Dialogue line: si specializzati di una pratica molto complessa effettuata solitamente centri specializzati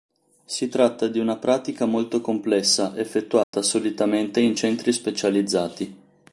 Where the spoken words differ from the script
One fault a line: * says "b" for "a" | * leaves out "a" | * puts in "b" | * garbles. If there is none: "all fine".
* says "tratta" for "specializzati"
* puts in "in"